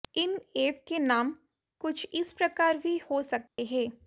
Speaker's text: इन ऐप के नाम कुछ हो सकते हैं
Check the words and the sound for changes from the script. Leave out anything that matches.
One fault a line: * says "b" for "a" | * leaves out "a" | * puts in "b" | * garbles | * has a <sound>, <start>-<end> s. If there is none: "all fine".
* puts in "इस प्रकार भी"
* has a dropout, 3.5-3.6 s